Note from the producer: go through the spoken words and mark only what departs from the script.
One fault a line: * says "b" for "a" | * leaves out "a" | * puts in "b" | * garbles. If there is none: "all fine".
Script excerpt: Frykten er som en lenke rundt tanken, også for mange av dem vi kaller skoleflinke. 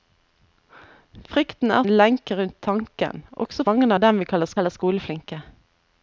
* leaves out "som"
* leaves out "for"
* puts in "kaller"